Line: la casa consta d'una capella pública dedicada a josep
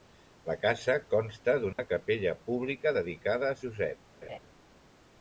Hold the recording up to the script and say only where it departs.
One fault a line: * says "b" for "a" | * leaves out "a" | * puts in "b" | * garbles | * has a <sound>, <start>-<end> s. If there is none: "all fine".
* has a dropout, 1.7-1.8 s
* has a laugh, 4.2-4.4 s